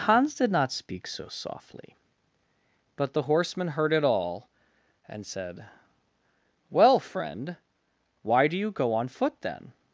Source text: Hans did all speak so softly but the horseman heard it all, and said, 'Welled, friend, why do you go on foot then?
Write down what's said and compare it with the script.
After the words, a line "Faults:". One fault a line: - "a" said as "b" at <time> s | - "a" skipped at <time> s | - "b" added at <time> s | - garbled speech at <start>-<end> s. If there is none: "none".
Hans did not speak so softly but the horseman heard it all, and said, 'Well, friend, why do you go on foot then?
Faults:
- "all" said as "not" at 0.5 s
- "Welled" said as "Well" at 6.7 s